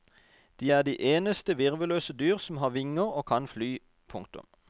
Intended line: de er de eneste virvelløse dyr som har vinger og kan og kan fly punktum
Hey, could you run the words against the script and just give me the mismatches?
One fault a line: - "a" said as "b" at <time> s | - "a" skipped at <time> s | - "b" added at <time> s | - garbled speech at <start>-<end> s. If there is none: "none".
- "og kan" skipped at 3.5 s